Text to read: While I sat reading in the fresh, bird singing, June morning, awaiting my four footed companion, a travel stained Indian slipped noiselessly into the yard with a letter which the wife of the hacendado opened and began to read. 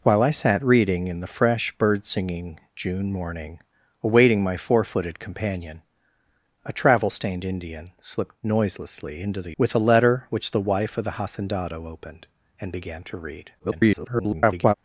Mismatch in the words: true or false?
true